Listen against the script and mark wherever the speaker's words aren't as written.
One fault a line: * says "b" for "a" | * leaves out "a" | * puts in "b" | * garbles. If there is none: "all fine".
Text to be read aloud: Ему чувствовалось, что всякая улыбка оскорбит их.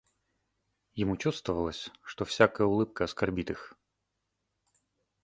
all fine